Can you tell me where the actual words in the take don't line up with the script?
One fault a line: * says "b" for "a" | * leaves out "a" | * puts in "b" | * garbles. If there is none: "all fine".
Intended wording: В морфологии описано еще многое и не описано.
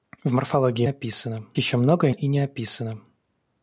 all fine